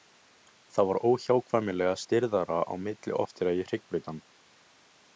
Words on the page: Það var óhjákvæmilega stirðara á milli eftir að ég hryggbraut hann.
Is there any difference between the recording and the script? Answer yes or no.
no